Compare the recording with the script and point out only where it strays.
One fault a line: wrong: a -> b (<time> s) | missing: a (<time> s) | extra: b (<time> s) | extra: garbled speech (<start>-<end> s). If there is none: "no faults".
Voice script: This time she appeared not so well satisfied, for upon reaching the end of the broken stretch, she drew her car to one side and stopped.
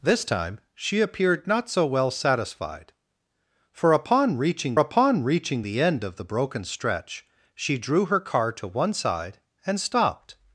extra: upon reaching (4.8 s)